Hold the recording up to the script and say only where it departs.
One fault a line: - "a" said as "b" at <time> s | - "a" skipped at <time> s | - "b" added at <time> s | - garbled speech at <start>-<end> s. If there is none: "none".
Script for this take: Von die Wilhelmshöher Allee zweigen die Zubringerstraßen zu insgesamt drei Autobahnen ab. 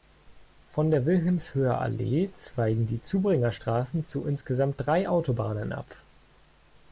- "die" said as "der" at 0.9 s